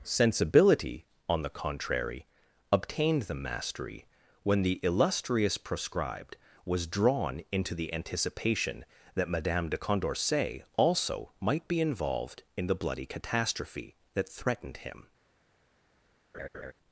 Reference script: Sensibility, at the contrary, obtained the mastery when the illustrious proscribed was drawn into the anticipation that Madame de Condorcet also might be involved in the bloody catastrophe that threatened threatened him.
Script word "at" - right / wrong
wrong